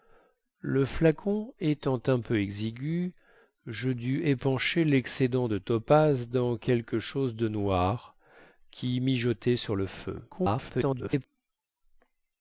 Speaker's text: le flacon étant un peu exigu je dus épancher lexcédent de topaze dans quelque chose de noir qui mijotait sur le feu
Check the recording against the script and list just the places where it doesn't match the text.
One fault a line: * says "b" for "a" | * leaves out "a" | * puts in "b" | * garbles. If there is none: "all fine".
* garbles